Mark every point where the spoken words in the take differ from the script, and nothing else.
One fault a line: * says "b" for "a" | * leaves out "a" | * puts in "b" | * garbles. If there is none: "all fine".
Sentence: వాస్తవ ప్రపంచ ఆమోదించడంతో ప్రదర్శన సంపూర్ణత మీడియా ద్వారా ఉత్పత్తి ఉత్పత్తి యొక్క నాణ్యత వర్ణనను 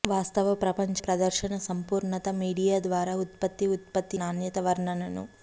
* leaves out "ఆమోదించడంతో"
* leaves out "యొక్క"